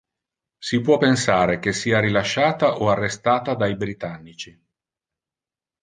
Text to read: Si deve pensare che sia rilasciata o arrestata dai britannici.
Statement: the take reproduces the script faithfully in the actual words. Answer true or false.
false